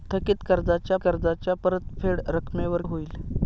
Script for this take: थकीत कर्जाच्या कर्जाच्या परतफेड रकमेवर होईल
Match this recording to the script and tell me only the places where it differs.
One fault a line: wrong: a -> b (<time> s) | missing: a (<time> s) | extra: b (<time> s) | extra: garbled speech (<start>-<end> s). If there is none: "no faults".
no faults